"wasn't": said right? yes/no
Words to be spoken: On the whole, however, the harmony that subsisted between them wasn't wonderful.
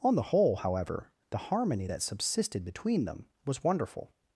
no